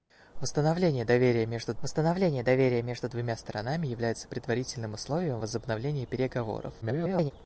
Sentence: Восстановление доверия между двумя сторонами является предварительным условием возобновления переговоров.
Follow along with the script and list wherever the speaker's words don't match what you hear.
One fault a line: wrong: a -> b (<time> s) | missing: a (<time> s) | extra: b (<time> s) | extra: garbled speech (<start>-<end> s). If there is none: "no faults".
extra: восстановление доверия между (1.8 s)
extra: garbled speech (6.8-7.3 s)